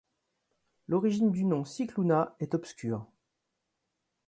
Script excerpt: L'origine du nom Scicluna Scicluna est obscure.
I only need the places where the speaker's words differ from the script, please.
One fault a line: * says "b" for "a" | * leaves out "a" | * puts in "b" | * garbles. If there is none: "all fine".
* leaves out "Scicluna"